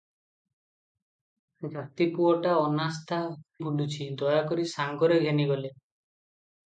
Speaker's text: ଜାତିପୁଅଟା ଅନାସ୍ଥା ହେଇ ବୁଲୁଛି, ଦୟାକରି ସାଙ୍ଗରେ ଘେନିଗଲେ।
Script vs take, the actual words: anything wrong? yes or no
yes